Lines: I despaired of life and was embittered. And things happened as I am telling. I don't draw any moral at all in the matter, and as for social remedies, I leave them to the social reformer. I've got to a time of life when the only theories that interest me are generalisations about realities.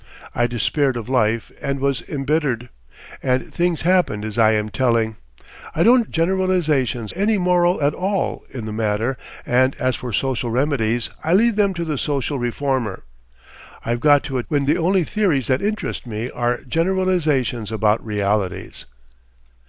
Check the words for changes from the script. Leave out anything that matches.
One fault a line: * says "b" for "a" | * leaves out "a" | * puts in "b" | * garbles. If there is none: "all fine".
* says "generalisations" for "draw"
* leaves out "time of life"